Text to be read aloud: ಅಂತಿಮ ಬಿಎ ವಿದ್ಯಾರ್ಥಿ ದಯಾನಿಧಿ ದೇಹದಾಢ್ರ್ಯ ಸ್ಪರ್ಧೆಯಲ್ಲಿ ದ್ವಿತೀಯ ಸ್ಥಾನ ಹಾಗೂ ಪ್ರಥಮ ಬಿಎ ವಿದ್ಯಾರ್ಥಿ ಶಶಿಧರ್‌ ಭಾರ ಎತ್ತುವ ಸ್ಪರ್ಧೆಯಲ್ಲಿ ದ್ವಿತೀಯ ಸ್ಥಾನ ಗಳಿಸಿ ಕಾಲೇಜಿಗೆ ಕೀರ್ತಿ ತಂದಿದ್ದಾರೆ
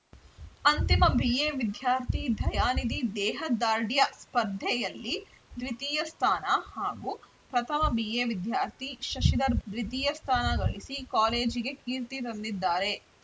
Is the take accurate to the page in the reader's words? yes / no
no